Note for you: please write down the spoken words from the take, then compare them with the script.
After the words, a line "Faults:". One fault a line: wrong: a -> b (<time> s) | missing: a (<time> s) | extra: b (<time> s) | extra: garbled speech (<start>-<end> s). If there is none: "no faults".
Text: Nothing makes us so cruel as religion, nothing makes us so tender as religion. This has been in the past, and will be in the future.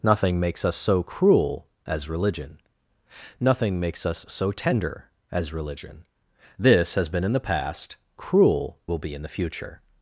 Nothing makes us so cruel as religion, nothing makes us so tender as religion. This has been in the past, cruel will be in the future.
Faults:
wrong: and -> cruel (8.1 s)